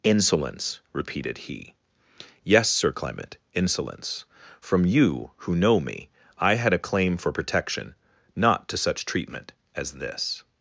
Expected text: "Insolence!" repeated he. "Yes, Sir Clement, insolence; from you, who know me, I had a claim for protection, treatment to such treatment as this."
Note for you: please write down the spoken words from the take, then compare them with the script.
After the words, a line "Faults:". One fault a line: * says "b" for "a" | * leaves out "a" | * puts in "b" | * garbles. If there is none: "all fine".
"Insolence!" repeated he. "Yes, Sir Clement, insolence; from you, who know me, I had a claim for protection, not to such treatment as this."
Faults:
* says "not" for "treatment"